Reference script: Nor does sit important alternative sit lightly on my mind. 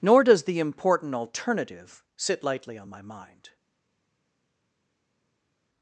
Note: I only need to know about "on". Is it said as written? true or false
true